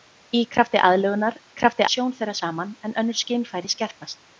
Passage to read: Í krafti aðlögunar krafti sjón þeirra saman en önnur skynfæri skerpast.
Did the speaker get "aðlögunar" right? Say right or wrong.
right